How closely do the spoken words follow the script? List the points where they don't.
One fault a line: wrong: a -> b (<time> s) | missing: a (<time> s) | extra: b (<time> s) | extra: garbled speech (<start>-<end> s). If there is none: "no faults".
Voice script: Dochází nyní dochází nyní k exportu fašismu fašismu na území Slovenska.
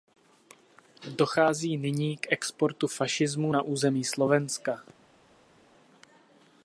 missing: dochází nyní (2.2 s)
missing: fašismu (3.5 s)